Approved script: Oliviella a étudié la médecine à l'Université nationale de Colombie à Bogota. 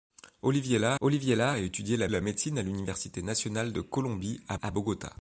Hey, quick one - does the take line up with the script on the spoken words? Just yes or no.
no